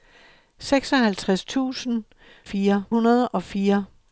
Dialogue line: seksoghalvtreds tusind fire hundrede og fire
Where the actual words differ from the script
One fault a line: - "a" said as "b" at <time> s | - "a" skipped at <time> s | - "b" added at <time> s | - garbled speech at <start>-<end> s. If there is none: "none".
none